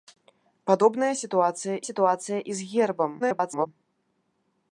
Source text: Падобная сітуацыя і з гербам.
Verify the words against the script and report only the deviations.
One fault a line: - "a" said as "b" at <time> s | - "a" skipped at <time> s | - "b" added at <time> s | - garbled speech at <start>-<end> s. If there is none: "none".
- "сітуацыя" added at 1.9 s
- garbled speech at 3.2-3.7 s